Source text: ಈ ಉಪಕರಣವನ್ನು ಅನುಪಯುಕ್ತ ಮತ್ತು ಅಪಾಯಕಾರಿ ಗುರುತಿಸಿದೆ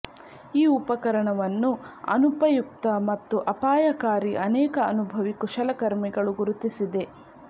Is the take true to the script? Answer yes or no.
no